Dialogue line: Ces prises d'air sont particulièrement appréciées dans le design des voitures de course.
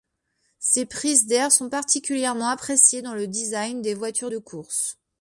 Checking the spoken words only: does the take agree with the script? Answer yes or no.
yes